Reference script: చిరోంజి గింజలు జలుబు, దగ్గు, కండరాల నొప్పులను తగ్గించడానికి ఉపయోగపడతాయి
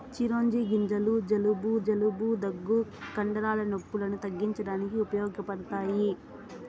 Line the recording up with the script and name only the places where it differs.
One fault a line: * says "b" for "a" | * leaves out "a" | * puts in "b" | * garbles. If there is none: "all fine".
* puts in "జలుబు"